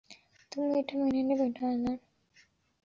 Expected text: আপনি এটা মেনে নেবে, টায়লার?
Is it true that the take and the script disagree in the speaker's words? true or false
true